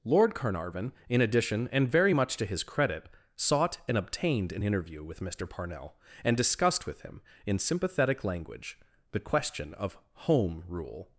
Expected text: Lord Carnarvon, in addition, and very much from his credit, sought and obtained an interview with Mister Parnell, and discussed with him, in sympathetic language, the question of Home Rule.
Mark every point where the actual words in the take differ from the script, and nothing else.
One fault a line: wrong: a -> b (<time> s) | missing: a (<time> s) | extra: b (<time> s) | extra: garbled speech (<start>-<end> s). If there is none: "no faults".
wrong: from -> to (2.4 s)